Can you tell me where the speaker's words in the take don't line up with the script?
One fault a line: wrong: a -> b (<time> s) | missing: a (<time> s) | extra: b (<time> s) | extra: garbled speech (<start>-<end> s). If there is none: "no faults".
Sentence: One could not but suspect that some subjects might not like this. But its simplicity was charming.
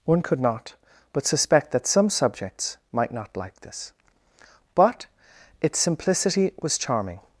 no faults